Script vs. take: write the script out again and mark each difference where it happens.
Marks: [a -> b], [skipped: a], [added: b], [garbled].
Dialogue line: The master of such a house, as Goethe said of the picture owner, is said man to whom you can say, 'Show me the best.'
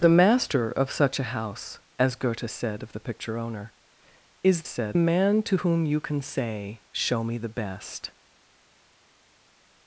The master of such a house, as Goethe said of the picture owner, is said man to whom you can say, 'Show me the best.'